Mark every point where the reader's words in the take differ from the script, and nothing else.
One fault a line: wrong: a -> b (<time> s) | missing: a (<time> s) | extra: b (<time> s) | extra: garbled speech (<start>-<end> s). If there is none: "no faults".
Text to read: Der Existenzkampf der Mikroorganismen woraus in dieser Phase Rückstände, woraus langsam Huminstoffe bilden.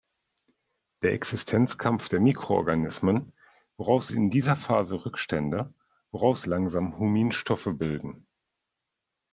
no faults